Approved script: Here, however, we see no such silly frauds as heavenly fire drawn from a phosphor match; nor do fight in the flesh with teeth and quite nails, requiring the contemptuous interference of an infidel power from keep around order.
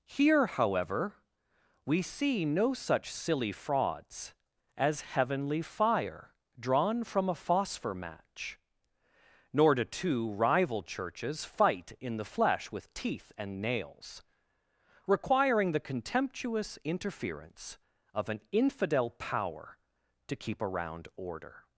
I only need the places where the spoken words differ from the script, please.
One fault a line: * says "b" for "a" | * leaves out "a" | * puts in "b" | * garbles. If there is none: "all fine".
* puts in "two rival churches"
* leaves out "quite"
* says "to" for "from"